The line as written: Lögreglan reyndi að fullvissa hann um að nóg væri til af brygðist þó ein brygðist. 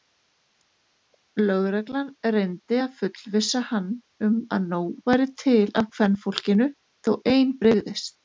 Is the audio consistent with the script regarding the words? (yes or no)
no